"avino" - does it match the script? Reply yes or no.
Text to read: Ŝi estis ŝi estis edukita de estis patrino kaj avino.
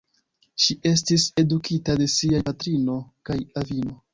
yes